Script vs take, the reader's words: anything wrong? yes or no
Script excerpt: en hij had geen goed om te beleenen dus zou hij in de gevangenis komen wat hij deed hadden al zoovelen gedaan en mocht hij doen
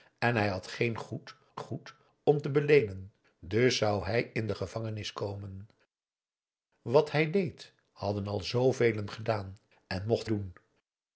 yes